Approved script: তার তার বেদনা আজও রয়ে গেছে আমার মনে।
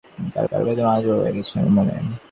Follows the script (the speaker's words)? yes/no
yes